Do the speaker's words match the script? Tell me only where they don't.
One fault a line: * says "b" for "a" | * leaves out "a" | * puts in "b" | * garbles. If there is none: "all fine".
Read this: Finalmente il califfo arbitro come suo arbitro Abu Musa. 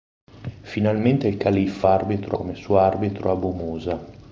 all fine